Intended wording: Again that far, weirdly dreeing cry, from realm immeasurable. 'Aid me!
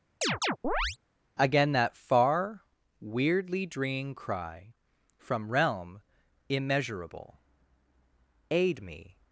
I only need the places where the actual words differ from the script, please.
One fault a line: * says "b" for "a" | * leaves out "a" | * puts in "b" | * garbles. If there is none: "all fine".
all fine